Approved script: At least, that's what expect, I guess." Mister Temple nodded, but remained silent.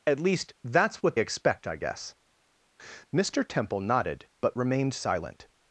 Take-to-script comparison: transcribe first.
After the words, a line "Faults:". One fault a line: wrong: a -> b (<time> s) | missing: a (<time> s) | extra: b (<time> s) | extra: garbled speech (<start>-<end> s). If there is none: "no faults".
At least, that's what expect, I guess." Mister Temple nodded, but remained silent.
Faults:
no faults